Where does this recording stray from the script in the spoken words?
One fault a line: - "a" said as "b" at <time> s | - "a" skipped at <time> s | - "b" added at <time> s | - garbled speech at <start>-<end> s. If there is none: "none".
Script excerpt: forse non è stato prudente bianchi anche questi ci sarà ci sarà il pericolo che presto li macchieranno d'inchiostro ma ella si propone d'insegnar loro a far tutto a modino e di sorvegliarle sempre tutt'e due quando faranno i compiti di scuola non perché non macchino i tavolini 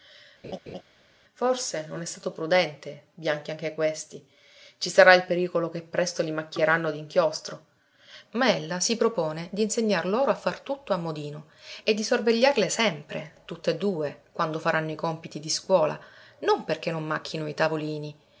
- "ci sarà" skipped at 5.1 s